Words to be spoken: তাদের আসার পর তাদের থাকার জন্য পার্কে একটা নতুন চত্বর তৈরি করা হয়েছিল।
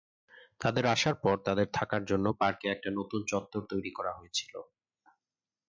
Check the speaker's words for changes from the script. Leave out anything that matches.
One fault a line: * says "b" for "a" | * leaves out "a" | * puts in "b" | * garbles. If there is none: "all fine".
all fine